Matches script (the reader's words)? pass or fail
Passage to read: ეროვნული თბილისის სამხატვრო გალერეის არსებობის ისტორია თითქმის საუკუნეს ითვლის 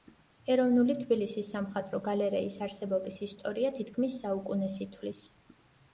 pass